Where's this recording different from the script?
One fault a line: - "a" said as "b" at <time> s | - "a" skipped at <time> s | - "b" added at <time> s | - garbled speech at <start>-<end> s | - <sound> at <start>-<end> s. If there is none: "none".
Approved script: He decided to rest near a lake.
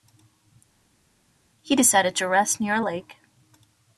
none